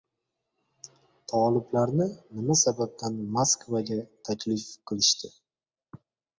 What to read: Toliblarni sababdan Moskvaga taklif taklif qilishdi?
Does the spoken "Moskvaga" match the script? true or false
true